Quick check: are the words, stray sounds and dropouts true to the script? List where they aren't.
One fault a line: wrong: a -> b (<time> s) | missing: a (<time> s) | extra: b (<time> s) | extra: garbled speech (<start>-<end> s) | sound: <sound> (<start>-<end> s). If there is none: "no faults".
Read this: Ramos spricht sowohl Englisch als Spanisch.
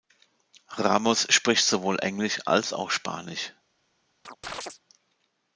extra: auch (2.7 s)
sound: chirp (4.2-4.8 s)